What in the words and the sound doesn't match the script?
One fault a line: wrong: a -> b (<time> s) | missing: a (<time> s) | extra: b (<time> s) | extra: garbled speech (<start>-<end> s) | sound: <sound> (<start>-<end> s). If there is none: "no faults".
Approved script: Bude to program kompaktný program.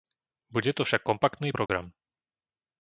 wrong: program -> však (0.8 s)
sound: dropout (1.7-1.7 s)